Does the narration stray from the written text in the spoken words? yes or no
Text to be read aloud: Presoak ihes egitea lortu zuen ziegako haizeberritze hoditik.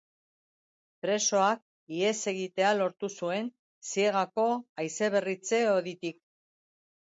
no